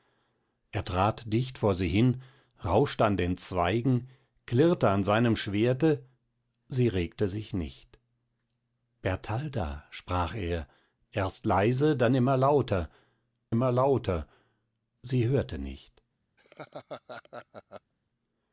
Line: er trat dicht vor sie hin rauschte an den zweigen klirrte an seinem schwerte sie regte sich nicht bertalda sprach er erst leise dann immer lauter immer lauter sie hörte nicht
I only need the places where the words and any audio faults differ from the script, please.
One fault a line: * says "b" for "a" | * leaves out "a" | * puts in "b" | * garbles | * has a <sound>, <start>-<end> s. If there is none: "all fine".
* has a laugh, 16.4-17.9 s